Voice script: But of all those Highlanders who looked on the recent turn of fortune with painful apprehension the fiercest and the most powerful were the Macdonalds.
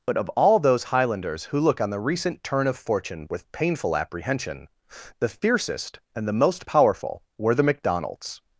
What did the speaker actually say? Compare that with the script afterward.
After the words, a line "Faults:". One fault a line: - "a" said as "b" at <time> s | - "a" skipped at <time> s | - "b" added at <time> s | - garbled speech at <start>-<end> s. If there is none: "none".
But of all those Highlanders who look on the recent turn of fortune with painful apprehension the fiercest and the most powerful were the Macdonalds.
Faults:
- "looked" said as "look" at 1.6 s